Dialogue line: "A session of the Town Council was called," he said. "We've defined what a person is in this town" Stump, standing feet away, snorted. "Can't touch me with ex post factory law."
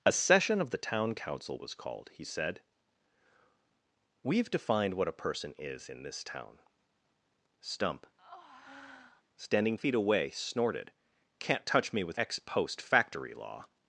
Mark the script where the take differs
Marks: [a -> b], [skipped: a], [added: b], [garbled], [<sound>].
"A session of the Town Council was called," he said. "We've defined what a person is in this town" Stump, [breath] standing feet away, snorted. "Can't touch me with ex post factory law."